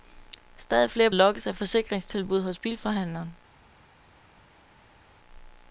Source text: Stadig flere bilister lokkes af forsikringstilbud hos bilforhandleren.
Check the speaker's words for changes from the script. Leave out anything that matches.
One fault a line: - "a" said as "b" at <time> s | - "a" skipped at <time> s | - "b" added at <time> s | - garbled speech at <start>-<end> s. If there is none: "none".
- "bilister" skipped at 1.1 s